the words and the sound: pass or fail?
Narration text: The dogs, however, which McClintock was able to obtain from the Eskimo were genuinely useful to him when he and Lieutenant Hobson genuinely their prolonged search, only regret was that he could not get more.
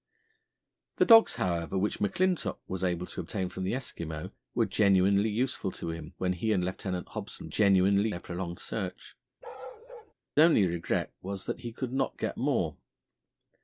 fail